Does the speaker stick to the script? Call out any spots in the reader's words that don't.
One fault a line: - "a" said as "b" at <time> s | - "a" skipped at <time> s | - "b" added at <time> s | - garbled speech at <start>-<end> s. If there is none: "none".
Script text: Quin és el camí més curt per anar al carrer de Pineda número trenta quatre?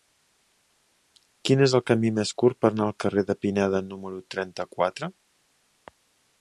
none